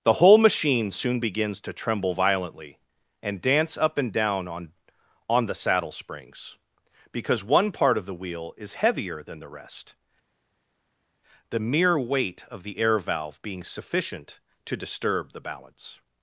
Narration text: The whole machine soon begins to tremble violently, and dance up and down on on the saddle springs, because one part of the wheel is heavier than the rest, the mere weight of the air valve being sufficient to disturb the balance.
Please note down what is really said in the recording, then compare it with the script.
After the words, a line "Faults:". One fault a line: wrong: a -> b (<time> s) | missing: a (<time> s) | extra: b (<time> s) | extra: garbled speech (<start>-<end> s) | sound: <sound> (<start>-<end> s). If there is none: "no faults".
The whole machine soon begins to tremble violently, and dance up and down on on the saddle springs, because one part of the wheel is heavier than the rest, the mere weight of the air valve being sufficient to disturb the balance.
Faults:
no faults